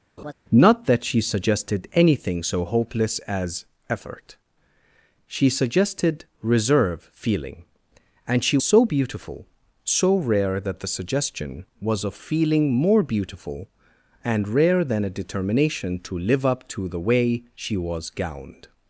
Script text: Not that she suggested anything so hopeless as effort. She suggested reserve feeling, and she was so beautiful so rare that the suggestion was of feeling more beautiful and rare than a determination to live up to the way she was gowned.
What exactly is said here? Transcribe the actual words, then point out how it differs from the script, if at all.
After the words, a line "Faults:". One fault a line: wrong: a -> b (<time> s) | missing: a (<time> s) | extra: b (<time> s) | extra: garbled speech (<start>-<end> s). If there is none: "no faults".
Not that she suggested anything so hopeless as effort. She suggested reserve feeling, and she so beautiful so rare that the suggestion was of feeling more beautiful and rare than a determination to live up to the way she was gowned.
Faults:
missing: was (8.6 s)